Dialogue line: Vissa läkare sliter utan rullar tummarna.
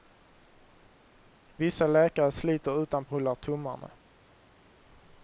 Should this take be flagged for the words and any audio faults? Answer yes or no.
no